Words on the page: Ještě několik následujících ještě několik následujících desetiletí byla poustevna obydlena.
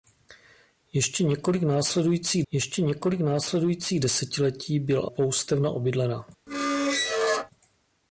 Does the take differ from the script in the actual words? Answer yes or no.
no